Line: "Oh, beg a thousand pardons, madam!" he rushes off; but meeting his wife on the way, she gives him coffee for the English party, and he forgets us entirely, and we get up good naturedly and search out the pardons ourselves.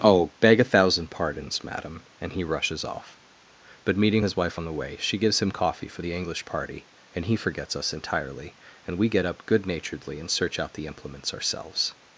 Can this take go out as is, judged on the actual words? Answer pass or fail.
fail